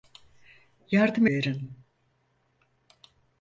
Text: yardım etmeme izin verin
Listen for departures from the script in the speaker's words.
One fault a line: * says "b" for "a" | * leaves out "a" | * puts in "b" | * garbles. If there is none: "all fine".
* leaves out "etmeme izin"